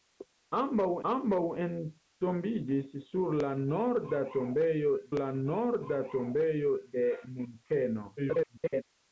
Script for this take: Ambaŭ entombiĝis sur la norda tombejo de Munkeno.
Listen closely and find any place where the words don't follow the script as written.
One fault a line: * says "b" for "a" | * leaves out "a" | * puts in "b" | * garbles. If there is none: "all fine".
* puts in "ambaŭ"
* puts in "la norda tombejo"
* garbles